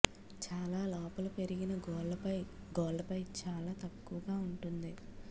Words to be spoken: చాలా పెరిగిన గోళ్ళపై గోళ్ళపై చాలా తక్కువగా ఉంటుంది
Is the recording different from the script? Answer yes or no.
yes